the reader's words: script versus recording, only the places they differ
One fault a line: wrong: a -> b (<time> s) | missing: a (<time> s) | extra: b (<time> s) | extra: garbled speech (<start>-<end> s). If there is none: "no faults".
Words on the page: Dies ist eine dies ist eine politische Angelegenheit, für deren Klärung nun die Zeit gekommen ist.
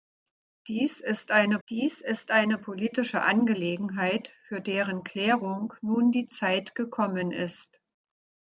no faults